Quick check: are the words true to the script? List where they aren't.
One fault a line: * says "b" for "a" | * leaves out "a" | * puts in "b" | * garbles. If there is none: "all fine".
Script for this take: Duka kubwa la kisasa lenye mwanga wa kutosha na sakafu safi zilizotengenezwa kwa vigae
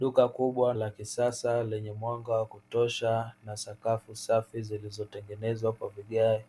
all fine